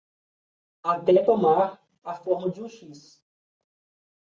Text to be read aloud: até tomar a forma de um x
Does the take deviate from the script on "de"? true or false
false